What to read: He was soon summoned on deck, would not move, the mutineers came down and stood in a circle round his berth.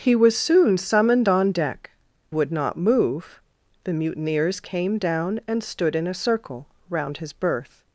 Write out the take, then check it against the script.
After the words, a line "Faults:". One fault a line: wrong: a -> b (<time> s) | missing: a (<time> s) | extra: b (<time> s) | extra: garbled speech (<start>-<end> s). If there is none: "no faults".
He was soon summoned on deck, would not move, the mutineers came down and stood in a circle round his berth.
Faults:
no faults